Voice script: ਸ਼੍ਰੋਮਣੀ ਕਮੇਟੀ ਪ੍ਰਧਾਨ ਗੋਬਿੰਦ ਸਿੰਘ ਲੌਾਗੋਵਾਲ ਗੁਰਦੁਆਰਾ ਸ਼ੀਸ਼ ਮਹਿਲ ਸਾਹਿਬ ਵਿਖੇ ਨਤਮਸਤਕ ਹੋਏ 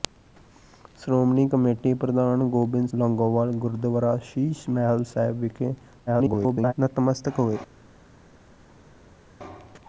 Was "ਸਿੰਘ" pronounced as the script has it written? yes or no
no